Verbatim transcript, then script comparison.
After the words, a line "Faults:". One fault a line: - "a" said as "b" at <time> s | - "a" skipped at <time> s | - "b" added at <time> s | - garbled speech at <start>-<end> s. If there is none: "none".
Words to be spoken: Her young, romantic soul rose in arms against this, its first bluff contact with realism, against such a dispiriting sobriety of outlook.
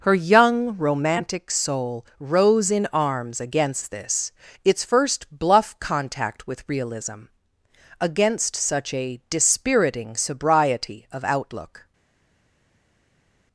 Her young, romantic soul rose in arms against this, its first bluff contact with realism, against such a dispiriting sobriety of outlook.
Faults:
none